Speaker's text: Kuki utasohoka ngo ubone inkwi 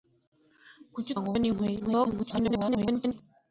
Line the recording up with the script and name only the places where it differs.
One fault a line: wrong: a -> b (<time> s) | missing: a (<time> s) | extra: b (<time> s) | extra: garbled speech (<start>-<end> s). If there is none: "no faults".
missing: utasohoka (1.1 s)
extra: garbled speech (1.8-3.1 s)